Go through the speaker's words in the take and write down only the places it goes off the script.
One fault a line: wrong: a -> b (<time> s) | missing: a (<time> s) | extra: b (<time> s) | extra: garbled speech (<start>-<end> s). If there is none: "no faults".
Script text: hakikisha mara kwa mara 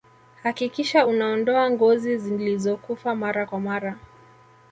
extra: unaondoa ngozi zilizokufa (1.0 s)